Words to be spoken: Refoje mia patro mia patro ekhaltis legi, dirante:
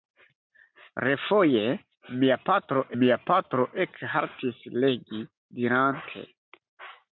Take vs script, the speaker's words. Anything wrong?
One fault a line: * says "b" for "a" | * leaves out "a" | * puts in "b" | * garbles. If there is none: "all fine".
all fine